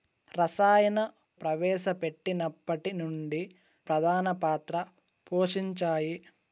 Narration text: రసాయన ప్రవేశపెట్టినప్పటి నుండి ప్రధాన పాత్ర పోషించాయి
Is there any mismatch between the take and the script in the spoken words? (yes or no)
no